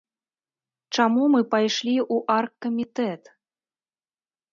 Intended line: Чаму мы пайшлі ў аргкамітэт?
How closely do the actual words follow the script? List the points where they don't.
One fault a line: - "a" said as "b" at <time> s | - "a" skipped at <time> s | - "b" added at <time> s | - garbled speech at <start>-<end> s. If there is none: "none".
none